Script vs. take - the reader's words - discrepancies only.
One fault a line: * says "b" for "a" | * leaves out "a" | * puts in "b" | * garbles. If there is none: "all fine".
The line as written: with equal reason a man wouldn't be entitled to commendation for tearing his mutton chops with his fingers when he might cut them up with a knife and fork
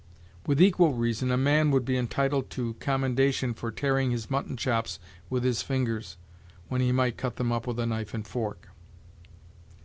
* says "would" for "wouldn't"